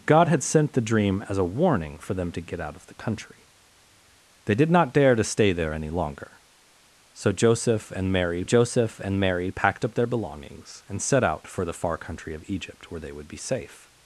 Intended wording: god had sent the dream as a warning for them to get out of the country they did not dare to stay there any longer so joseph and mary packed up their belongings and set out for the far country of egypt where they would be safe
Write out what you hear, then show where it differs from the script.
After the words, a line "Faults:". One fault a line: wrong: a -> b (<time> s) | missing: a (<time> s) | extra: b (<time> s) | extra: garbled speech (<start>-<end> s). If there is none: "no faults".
god had sent the dream as a warning for them to get out of the country they did not dare to stay there any longer so joseph and mary joseph and mary packed up their belongings and set out for the far country of egypt where they would be safe
Faults:
extra: joseph and mary (8.4 s)